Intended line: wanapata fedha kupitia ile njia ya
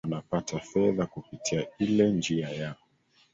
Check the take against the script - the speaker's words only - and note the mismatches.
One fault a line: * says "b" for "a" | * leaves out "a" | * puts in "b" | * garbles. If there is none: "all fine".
all fine